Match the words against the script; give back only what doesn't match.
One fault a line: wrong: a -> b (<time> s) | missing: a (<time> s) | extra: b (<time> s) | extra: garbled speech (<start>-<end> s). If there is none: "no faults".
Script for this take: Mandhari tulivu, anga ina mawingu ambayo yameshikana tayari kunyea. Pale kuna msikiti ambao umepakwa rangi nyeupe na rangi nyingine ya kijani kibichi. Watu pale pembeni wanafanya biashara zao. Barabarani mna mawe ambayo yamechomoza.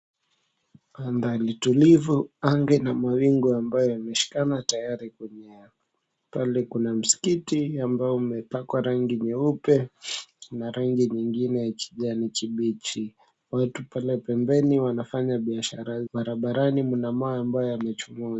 missing: zao (16.0 s)